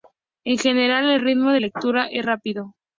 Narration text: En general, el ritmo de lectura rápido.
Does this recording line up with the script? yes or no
no